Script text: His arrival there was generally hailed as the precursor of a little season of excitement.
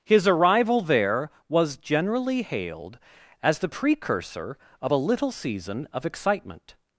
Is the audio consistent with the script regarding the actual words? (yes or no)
yes